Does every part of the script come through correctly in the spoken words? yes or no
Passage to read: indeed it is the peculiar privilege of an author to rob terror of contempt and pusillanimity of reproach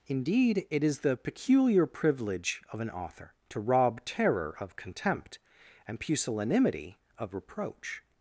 yes